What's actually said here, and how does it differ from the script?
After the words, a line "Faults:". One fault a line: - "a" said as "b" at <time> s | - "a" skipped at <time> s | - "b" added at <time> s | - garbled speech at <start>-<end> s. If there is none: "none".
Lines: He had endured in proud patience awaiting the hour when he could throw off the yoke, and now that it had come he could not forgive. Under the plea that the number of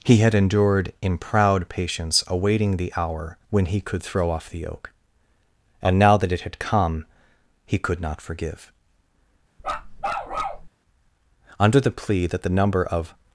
He had endured in proud patience awaiting the hour when he could throw off the yoke, and now that it had come he could not forgive. Under the plea that the number of
Faults:
none